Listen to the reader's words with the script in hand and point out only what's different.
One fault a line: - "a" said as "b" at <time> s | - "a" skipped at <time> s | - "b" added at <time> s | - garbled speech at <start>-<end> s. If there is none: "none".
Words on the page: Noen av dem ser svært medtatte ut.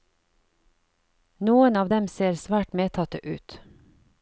none